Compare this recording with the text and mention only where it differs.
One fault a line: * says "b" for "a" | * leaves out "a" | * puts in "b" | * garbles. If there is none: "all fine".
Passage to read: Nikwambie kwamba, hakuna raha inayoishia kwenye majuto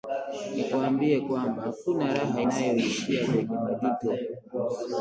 all fine